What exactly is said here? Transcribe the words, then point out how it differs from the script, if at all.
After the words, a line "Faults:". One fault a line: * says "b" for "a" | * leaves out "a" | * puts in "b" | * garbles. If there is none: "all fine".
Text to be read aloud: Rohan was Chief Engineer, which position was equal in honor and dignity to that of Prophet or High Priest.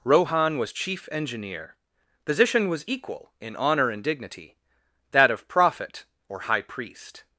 Rohan was Chief Engineer, position was equal in honor and dignity that of Prophet or High Priest.
Faults:
* leaves out "which"
* leaves out "to"